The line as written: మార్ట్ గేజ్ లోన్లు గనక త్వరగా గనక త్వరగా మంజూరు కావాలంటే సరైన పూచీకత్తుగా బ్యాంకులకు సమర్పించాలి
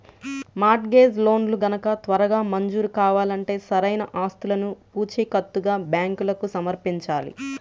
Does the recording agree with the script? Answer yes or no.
no